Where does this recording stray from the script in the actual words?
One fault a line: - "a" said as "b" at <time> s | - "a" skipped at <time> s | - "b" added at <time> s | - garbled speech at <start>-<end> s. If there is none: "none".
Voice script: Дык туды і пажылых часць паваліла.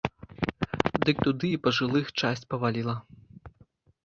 none